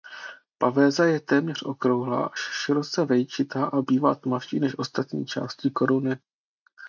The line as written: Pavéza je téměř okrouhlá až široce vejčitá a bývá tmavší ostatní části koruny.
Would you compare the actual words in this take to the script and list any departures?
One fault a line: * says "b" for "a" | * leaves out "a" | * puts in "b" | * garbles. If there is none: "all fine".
* puts in "než"